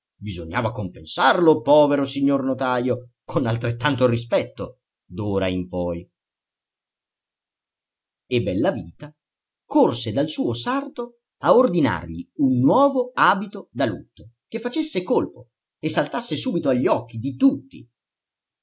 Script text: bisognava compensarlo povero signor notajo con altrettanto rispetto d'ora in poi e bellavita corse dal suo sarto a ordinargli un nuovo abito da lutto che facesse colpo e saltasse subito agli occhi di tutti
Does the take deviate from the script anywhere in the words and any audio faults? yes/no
no